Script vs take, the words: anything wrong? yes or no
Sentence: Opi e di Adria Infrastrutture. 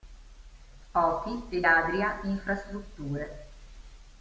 yes